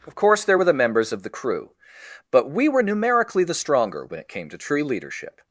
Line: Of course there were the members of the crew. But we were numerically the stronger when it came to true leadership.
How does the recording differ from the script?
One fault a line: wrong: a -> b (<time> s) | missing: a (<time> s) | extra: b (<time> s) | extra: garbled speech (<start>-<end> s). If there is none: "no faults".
no faults